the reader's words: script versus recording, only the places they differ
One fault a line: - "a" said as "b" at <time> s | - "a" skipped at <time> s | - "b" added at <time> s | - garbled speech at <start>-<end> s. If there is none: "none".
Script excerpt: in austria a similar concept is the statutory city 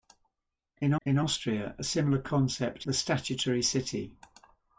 - "in" added at 1.0 s
- "is" skipped at 2.9 s